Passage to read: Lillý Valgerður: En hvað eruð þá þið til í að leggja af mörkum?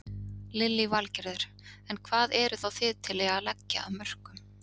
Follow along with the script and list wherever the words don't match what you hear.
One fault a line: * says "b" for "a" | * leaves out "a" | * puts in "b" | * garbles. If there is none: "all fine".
all fine